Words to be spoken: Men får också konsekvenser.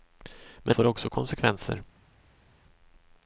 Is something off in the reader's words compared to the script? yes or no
no